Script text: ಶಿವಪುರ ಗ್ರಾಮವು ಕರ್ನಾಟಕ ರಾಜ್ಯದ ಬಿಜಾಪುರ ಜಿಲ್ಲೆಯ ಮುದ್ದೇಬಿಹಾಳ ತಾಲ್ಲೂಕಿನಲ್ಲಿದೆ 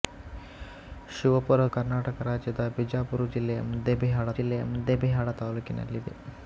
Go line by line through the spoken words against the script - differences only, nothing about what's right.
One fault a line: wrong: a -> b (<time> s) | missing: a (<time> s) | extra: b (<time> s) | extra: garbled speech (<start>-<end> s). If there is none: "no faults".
missing: ಗ್ರಾಮವು (1.6 s)
extra: ಜಿಲ್ಲೆಯ ಮುದ್ದೇಬಿಹಾಳ (4.4 s)